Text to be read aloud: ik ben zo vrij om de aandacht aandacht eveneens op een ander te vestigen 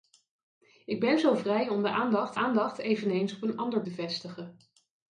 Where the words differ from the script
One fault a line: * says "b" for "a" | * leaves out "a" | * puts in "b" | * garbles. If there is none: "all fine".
all fine